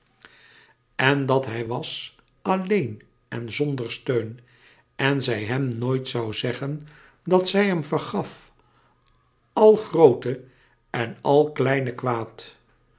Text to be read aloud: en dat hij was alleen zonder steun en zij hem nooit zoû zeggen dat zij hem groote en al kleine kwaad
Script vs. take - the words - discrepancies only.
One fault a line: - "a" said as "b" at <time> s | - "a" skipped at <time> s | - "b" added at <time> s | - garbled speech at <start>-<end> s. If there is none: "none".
- "en" added at 3.3 s
- "vergaf al" added at 7.8 s